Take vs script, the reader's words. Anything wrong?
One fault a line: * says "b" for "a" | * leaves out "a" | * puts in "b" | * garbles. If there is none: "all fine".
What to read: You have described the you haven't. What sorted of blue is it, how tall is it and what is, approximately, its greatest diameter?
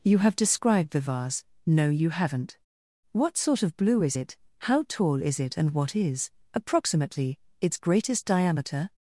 * puts in "vase no"
* says "sort" for "sorted"